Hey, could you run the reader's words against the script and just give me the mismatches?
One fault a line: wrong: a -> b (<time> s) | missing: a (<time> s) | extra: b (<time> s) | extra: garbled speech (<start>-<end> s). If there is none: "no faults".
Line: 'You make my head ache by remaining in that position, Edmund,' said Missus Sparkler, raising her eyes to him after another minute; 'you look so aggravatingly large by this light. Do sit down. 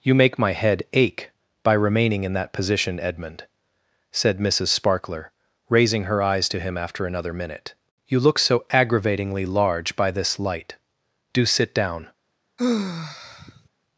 no faults